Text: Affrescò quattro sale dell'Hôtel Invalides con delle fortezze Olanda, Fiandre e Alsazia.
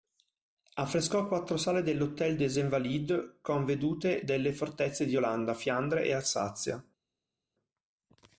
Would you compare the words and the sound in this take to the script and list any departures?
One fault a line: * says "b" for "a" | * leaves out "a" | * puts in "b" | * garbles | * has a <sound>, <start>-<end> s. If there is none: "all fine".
* puts in "des"
* puts in "vedute"
* puts in "di"